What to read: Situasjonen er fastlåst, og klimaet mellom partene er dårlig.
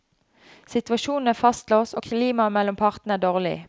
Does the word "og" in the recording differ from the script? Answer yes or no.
no